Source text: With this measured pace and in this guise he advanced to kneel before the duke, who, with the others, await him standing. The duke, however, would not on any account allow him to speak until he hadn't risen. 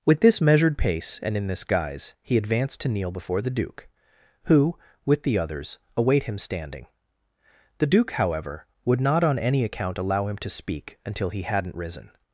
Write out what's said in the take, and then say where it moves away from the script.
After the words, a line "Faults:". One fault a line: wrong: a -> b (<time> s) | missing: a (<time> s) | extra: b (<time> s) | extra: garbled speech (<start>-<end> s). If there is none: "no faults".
With this measured pace and in this guise he advanced to kneel before the duke, who, with the others, await him standing. The duke, however, would not on any account allow him to speak until he hadn't risen.
Faults:
no faults